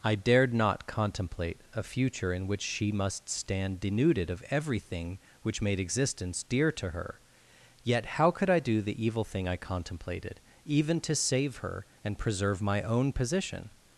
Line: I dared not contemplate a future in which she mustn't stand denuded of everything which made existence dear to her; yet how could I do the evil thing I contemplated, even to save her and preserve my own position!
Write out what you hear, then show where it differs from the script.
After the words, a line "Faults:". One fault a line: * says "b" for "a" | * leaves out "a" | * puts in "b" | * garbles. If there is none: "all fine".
I dared not contemplate a future in which she must stand denuded of everything which made existence dear to her; yet how could I do the evil thing I contemplated, even to save her and preserve my own position!
Faults:
* says "must" for "mustn't"